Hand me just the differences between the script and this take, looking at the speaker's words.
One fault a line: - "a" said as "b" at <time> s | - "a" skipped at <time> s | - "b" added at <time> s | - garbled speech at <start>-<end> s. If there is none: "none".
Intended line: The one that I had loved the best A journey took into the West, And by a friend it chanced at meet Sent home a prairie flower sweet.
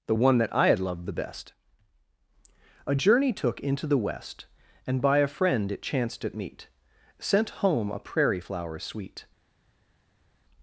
none